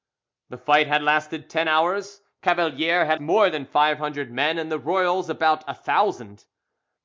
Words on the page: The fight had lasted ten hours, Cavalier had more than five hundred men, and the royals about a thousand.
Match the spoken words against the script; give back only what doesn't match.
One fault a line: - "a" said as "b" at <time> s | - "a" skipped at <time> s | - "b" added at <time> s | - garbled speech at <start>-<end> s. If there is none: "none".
none